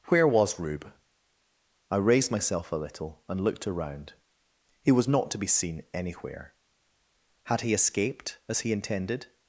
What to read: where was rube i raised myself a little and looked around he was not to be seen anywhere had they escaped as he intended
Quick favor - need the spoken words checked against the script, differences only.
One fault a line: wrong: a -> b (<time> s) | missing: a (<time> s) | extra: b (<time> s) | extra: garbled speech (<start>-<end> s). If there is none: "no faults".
wrong: they -> he (7.6 s)